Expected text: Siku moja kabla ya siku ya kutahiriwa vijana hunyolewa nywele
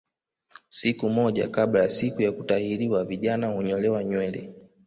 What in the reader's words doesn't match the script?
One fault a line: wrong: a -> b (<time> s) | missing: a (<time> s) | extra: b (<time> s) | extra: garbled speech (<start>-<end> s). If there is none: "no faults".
no faults